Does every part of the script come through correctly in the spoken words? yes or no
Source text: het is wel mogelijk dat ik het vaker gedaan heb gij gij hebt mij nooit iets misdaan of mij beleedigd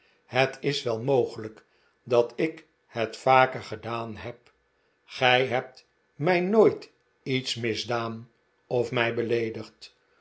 no